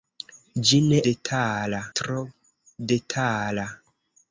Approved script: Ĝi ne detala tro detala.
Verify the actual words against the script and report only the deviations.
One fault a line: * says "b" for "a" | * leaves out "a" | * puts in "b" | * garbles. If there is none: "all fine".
all fine